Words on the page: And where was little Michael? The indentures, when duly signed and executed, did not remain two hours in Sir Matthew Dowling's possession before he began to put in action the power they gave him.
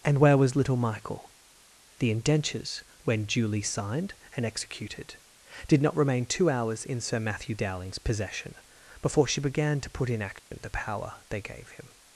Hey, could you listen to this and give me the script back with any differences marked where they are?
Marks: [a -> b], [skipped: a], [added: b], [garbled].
And where was little Michael? The indentures, when duly signed and executed, did not remain two hours in Sir Matthew Dowling's possession before [he -> she] began to put in action the power they gave him.